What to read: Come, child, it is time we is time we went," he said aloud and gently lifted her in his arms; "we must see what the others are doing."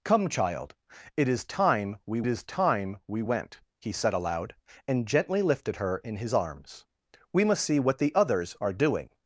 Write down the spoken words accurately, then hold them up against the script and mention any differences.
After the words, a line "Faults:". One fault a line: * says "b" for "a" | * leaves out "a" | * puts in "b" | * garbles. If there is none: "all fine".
Come, child, it is time we is time we went," he said aloud and gently lifted her in his arms; "we must see what the others are doing."
Faults:
all fine